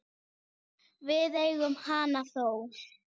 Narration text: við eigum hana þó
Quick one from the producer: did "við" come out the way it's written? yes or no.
yes